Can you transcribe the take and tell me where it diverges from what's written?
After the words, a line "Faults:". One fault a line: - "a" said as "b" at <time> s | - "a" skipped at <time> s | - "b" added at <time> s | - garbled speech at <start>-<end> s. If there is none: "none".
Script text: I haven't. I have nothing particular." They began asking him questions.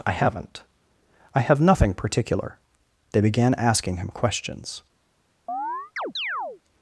I haven't. I have nothing particular." They began asking him questions.
Faults:
none